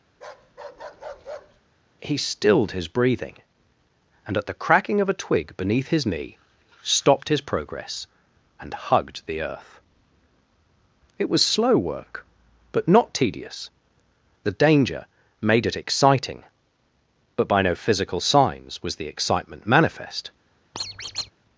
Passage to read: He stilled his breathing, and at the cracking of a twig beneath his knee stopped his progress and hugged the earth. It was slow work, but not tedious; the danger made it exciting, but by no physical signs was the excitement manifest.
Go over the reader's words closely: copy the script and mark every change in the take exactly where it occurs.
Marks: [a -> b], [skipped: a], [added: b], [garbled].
He stilled his breathing, and at the cracking of a twig beneath his knee stopped his progress and hugged the earth. It was slow work, but not tedious; the danger made it exciting, but by no physical signs was the excitement manifest.